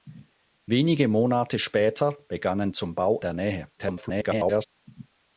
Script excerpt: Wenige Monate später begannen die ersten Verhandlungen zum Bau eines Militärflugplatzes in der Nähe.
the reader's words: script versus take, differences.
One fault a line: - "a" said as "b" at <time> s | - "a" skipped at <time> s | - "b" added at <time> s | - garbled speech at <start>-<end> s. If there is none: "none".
- "die ersten Verhandlungen" skipped at 2.7 s
- "eines Militärflugplatzes in" skipped at 3.2 s
- garbled speech at 3.8-4.7 s